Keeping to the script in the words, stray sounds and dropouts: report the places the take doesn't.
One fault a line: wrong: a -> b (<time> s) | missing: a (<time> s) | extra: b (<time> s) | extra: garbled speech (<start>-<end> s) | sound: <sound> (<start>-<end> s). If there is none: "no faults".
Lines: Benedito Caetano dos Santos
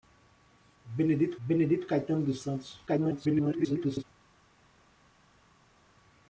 extra: benedito (1.5 s)
extra: garbled speech (2.9-4.0 s)